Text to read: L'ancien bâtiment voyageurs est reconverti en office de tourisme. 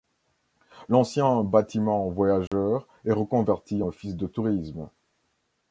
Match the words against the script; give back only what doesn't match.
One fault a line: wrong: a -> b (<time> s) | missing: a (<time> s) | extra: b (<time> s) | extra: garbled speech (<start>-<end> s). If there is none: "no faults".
missing: en (3.8 s)